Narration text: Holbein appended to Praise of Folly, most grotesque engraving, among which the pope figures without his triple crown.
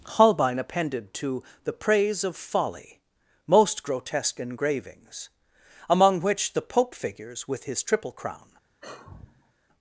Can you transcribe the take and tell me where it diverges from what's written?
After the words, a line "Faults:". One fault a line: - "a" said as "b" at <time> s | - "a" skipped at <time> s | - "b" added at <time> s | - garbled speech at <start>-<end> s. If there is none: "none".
Holbein appended to the Praise of Folly, most grotesque engravings, among which the pope figures with his triple crown.
Faults:
- "the" added at 1.6 s
- "engraving" said as "engravings" at 4.4 s
- "without" said as "with" at 7.5 s